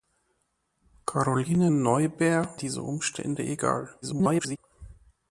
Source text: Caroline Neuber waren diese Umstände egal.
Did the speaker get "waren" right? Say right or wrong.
wrong